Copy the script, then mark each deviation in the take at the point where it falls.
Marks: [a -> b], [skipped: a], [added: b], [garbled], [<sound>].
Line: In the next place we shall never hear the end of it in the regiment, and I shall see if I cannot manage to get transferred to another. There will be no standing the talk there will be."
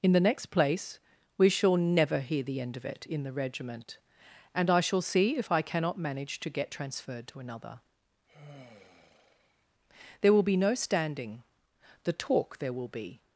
In the next place we shall never hear the end of it in the regiment, and I shall see if I cannot manage to get transferred to another. [sigh] There will be no standing the talk there will be."